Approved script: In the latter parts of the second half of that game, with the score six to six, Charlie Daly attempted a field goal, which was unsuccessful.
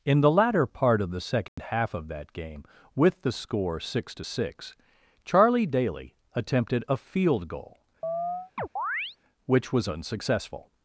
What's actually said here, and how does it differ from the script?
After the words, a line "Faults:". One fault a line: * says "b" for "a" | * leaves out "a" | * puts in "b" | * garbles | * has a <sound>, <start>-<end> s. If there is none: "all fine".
In the latter part of the second half of that game, with the score six to six, Charlie Daly attempted a field goal, which was unsuccessful.
Faults:
* says "part" for "parts"
* has a dropout, 1.5-1.6 s
* has a chirp, 8.0-9.2 s